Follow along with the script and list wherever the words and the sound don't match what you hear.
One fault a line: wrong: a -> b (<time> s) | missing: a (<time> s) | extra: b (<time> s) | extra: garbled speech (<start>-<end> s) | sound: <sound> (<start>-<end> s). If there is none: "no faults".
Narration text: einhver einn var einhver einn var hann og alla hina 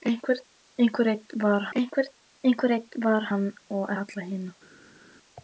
no faults